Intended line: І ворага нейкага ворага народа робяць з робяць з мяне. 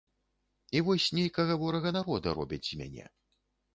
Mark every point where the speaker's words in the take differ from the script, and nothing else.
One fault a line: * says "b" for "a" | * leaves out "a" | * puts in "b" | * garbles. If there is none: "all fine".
* says "вось" for "ворага"
* leaves out "робяць з"